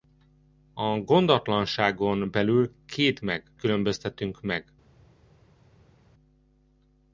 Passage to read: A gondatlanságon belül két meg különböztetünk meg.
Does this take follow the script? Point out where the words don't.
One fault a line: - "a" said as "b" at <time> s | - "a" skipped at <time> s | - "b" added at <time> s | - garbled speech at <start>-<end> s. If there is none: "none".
none